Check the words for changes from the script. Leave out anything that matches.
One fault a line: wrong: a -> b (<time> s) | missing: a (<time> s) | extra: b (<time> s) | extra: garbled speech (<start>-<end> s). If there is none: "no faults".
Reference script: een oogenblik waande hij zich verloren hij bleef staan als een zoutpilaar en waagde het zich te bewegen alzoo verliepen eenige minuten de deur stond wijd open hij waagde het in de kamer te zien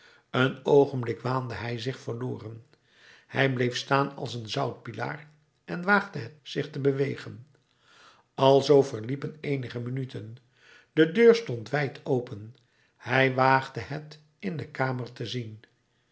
no faults